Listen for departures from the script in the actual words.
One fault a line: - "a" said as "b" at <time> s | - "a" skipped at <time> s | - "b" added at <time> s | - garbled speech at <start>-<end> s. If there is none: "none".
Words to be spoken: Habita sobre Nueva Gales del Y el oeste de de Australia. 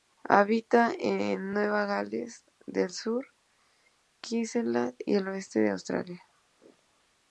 - "sobre" said as "en" at 1.0 s
- "Sur Queensland" added at 2.9 s
- "de" skipped at 5.7 s